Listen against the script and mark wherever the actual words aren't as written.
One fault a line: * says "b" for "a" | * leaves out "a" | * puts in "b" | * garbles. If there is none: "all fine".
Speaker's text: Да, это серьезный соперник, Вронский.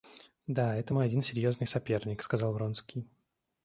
* puts in "мой один"
* puts in "сказал"